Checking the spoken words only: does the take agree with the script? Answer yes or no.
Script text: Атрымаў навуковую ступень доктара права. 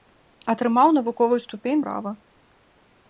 no